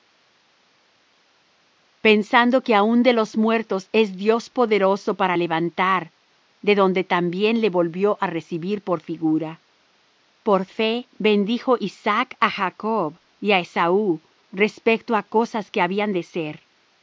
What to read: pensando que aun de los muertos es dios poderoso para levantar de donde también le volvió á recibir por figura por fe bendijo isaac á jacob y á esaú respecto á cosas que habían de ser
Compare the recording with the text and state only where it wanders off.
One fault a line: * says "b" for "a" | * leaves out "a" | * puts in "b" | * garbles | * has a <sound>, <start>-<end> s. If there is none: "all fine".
all fine